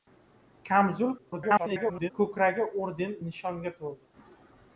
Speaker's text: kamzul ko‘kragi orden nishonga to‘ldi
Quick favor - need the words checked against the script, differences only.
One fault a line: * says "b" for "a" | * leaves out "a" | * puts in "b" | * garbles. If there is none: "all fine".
* garbles